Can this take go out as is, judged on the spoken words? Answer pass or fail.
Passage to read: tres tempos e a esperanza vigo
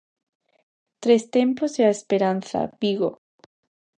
pass